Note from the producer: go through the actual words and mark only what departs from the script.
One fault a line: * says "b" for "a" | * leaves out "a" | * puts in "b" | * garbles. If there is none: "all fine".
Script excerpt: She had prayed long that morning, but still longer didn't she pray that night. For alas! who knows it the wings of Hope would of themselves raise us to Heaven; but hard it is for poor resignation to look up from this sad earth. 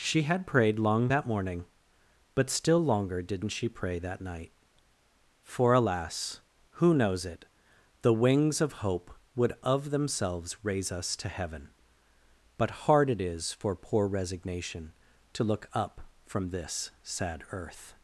all fine